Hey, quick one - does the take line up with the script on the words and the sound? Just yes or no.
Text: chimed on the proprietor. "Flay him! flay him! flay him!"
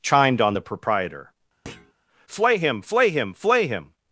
no